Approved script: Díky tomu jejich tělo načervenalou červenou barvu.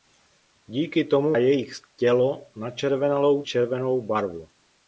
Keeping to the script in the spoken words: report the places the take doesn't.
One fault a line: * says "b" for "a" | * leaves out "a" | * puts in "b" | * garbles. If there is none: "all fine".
all fine